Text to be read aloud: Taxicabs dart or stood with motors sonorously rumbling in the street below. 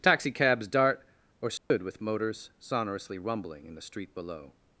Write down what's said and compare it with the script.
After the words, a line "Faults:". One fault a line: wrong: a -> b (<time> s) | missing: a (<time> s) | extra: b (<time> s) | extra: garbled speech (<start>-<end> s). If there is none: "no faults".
Taxicabs dart or stood with motors sonorously rumbling in the street below.
Faults:
no faults